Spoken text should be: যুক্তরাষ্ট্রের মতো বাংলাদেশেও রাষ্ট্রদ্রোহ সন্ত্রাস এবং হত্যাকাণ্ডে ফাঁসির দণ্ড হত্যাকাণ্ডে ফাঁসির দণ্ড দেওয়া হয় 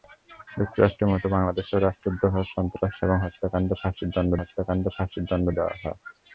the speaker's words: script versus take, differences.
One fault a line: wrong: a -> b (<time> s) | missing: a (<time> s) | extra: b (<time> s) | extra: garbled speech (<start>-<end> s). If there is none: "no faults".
no faults